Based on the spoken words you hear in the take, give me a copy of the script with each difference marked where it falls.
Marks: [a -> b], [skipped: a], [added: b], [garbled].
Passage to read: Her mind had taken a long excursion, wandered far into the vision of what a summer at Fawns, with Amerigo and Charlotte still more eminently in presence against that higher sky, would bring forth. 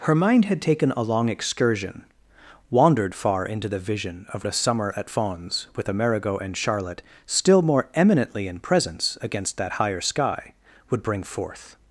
Her mind had taken a long excursion, wandered far into the vision of [skipped: what] a summer at Fawns, with Amerigo and Charlotte still more eminently in presence against that higher sky, would bring forth.